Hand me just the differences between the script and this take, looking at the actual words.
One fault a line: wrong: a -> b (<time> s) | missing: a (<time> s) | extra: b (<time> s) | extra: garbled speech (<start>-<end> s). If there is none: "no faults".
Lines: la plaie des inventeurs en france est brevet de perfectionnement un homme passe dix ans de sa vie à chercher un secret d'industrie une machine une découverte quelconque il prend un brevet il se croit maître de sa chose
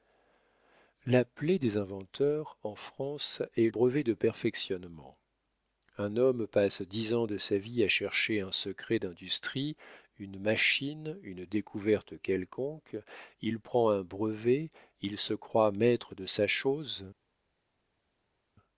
no faults